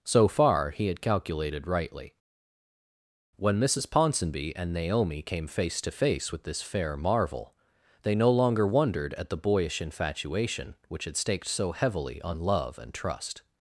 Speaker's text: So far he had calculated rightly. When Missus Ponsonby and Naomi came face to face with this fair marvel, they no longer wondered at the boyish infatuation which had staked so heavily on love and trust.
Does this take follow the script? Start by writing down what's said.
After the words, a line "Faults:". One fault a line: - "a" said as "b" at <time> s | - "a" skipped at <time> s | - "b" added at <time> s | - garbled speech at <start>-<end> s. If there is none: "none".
So far he had calculated rightly. When Missus Ponsonby and Naomi came face to face with this fair marvel, they no longer wondered at the boyish infatuation which had staked so heavily on love and trust.
Faults:
none